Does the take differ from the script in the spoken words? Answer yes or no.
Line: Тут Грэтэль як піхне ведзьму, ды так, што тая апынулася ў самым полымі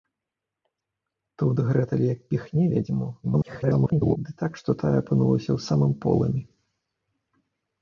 yes